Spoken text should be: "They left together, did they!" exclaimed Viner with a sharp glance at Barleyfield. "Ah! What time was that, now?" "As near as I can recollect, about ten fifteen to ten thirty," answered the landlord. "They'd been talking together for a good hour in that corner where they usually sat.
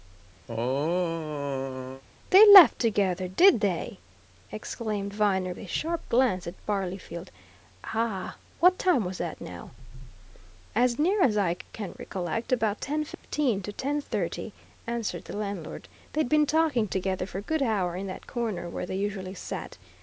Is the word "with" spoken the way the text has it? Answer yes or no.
no